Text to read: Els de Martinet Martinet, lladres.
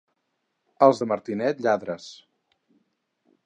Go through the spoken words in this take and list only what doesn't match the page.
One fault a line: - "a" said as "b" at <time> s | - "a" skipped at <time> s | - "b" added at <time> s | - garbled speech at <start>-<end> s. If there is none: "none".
- "Martinet" skipped at 1.6 s